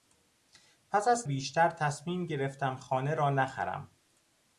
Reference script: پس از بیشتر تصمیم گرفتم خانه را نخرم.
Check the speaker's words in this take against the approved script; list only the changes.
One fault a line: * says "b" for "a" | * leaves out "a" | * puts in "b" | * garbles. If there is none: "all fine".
all fine